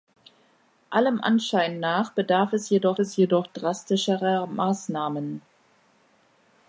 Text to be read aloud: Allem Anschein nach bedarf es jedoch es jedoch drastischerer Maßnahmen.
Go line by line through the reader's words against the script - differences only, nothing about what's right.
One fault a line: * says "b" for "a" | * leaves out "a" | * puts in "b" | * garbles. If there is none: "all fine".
all fine